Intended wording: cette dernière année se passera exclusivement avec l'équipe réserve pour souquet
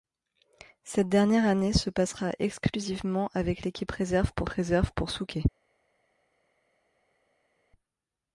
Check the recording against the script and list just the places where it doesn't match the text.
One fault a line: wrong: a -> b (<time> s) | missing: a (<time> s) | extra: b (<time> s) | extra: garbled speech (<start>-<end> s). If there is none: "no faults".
extra: réserve pour (4.5 s)